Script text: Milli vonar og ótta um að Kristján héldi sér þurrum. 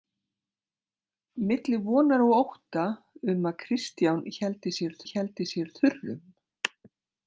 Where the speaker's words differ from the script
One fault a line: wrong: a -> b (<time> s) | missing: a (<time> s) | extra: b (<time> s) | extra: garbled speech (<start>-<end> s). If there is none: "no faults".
extra: héldi sér (5.1 s)